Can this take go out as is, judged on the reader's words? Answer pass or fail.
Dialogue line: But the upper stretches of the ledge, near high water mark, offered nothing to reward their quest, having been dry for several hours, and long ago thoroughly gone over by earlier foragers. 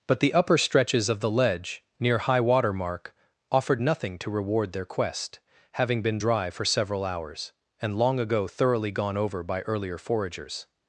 pass